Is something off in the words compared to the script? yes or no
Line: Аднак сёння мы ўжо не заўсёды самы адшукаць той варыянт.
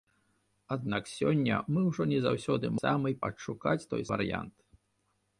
no